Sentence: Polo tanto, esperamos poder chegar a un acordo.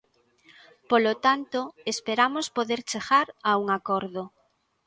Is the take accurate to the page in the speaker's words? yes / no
yes